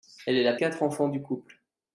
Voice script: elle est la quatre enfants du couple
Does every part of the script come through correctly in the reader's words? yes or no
yes